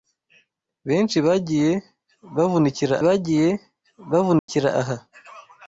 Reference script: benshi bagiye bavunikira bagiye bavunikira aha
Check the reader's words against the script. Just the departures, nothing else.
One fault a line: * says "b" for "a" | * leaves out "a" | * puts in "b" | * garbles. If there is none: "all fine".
all fine